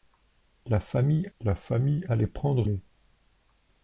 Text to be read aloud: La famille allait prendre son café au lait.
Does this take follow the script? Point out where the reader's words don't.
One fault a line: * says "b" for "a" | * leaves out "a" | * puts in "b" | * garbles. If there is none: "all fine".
* puts in "la famille"
* leaves out "son café au"